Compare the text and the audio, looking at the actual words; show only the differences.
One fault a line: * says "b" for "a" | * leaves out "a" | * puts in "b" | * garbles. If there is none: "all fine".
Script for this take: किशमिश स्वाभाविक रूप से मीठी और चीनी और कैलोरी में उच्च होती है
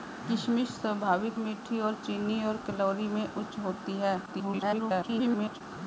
* leaves out "रूप से"
* garbles